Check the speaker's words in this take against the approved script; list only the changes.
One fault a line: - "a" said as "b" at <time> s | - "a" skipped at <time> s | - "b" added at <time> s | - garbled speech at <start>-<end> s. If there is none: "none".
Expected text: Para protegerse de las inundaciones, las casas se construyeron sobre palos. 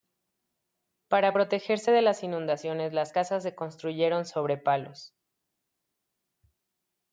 none